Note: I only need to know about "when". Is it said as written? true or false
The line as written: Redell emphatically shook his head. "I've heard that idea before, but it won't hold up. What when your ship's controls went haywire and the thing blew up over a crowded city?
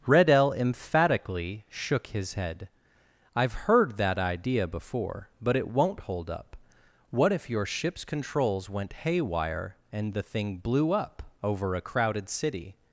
false